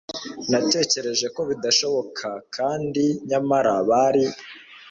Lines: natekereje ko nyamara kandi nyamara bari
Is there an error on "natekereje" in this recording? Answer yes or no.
no